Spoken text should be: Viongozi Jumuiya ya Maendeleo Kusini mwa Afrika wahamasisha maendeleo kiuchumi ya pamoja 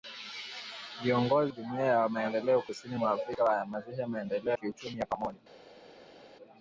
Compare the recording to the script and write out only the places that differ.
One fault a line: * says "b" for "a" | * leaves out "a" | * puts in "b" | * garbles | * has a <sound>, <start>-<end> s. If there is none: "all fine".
all fine